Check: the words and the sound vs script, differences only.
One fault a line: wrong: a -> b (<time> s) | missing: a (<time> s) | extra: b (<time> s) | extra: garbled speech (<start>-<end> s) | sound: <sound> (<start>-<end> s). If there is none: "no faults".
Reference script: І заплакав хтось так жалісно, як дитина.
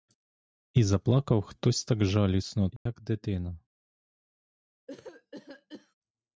sound: dropout (2.8-2.9 s)
sound: cough (4.9-6.0 s)